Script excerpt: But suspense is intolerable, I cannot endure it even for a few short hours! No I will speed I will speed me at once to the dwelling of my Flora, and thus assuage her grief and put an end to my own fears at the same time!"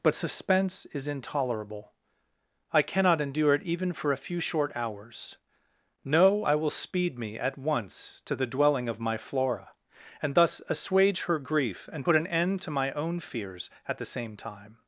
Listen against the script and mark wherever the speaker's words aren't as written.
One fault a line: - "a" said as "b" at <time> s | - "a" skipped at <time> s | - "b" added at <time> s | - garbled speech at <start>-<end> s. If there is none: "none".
- "I will speed" skipped at 7.2 s